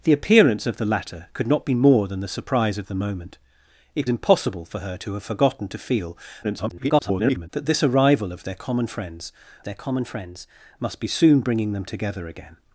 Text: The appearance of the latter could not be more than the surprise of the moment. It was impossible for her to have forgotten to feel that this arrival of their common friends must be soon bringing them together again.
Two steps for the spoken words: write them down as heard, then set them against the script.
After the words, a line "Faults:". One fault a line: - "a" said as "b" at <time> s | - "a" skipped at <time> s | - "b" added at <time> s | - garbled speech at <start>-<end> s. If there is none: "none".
The appearance of the latter could not be more than the surprise of the moment. It impossible for her to have forgotten to feel [garbled] that this arrival of their common friends their common friends must be soon bringing them together again.
Faults:
- "was" skipped at 4.1 s
- garbled speech at 6.4-7.5 s
- "their common friends" added at 9.6 s